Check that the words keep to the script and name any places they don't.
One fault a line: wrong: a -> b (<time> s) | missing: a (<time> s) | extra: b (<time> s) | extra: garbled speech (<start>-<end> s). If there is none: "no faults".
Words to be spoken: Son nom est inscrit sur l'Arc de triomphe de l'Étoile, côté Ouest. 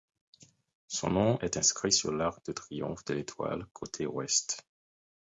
no faults